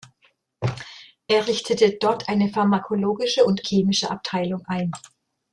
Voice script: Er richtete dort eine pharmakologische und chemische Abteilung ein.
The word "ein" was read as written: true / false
true